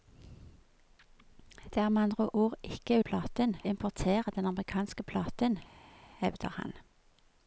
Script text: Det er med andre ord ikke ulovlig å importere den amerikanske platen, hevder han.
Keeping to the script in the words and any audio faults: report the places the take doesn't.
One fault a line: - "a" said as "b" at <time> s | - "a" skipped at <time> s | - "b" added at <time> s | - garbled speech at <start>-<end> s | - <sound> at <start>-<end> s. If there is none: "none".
- "ulovlig" said as "platen" at 3.0 s